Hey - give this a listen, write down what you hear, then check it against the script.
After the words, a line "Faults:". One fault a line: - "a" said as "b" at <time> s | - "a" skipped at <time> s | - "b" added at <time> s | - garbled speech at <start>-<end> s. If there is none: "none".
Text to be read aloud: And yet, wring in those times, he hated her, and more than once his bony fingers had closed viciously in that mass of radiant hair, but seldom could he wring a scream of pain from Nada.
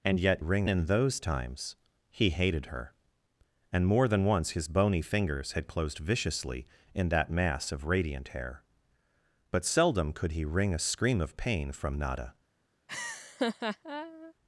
And yet, wring in those times, he hated her, and more than once his bony fingers had closed viciously in that mass of radiant hair, but seldom could he wring a scream of pain from Nada.
Faults:
none